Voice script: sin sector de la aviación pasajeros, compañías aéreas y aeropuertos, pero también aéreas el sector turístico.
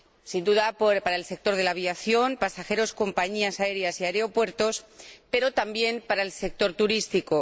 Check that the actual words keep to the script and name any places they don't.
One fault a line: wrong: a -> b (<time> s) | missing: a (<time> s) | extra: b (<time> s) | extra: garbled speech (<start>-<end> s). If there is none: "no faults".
extra: duda para el (0.4 s)
wrong: aéreas -> para (6.0 s)